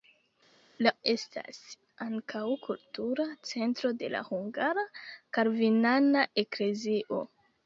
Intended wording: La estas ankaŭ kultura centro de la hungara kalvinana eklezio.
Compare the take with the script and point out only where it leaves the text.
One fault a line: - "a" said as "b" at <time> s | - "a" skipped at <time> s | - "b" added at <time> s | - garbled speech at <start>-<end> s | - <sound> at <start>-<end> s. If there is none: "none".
none